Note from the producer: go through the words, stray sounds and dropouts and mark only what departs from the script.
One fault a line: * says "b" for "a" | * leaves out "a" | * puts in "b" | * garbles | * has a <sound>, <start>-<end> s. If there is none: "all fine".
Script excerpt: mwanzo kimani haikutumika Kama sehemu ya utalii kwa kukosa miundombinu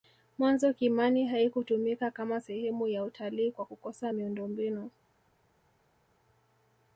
all fine